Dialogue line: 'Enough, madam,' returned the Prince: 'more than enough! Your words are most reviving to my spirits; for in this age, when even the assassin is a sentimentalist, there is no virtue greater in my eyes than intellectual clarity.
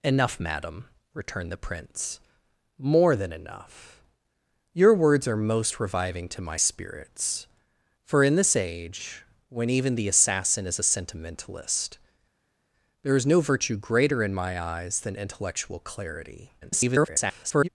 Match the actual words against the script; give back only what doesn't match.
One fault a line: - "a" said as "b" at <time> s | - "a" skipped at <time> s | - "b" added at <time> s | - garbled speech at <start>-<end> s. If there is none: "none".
- garbled speech at 16.6-17.7 s